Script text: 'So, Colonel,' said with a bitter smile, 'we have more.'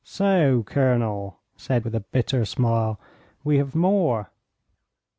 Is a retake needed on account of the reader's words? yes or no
no